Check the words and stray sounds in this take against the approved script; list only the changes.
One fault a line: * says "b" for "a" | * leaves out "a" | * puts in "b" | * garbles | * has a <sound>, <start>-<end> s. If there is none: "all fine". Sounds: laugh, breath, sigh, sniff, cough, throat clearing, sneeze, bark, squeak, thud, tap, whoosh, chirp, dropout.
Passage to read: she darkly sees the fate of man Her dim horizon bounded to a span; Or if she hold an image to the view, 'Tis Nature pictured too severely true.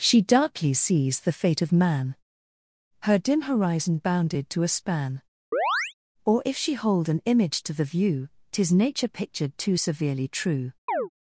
* has a chirp, 5.5-5.9 s
* has a chirp, 10.9-11.1 s